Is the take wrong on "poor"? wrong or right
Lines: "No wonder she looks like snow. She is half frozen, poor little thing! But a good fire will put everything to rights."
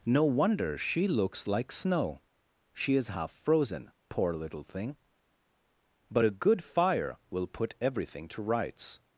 right